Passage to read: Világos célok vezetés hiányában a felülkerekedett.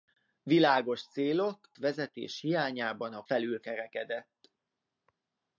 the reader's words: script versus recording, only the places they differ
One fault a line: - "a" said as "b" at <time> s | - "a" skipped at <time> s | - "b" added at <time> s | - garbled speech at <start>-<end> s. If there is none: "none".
none